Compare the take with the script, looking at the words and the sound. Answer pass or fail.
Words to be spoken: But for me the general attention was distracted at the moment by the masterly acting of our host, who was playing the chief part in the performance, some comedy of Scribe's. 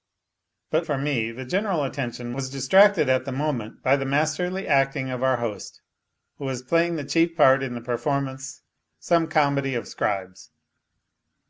pass